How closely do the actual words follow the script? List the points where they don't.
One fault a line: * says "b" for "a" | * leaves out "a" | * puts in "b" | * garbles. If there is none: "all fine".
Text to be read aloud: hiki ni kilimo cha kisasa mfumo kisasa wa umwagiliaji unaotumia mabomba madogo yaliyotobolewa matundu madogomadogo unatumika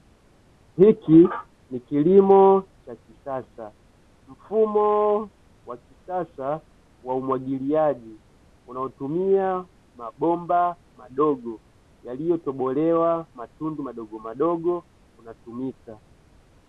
* puts in "wa"